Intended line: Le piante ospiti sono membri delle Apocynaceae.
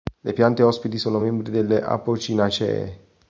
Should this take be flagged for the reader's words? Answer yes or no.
no